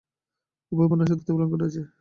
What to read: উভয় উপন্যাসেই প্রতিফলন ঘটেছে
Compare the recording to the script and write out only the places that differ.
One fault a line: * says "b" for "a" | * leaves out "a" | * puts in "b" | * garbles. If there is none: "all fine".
all fine